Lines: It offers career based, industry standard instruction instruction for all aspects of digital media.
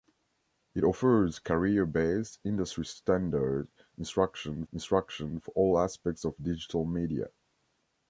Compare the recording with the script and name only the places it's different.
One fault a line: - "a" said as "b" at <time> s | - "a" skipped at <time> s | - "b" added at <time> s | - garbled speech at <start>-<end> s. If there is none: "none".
none